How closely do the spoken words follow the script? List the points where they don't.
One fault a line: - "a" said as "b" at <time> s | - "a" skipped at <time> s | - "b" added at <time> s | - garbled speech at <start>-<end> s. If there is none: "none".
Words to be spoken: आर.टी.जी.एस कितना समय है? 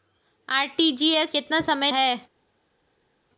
none